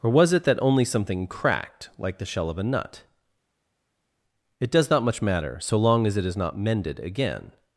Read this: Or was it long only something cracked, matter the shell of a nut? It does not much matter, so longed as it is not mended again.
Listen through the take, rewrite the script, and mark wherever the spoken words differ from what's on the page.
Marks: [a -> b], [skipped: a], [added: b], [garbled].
Or was it [long -> that] only something cracked, [matter -> like] the shell of a nut? It does not much matter, so [longed -> long] as it is not mended again.